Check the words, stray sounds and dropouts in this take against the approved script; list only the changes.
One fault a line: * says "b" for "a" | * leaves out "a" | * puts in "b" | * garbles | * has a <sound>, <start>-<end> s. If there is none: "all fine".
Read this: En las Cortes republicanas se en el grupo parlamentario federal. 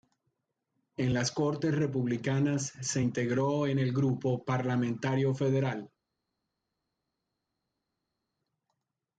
* puts in "integró"